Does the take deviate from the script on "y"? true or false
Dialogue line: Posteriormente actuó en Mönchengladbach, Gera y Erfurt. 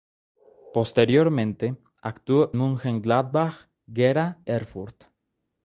true